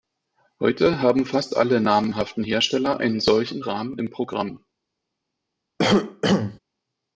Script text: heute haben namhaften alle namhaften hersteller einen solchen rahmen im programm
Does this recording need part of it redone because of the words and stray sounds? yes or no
yes